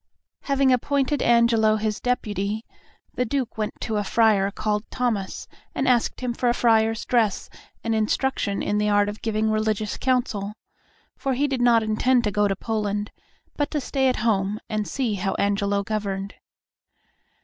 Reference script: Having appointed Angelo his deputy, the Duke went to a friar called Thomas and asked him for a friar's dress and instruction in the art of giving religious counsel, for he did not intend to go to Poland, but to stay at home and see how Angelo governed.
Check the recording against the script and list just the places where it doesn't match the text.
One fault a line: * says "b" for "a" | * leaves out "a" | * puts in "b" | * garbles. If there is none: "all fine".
all fine